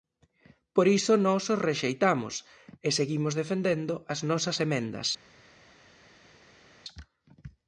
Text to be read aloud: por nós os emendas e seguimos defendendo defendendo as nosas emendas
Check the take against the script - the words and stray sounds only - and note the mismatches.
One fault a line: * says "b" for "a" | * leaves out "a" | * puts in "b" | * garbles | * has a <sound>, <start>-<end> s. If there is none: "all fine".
* puts in "iso"
* says "rexeitamos" for "emendas"
* leaves out "defendendo"